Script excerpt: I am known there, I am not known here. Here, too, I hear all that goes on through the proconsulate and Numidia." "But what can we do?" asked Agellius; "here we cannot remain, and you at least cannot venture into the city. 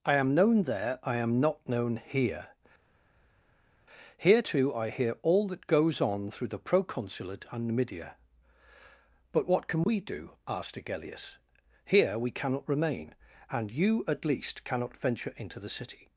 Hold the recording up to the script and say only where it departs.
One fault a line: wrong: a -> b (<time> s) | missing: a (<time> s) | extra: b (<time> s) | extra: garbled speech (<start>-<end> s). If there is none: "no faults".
no faults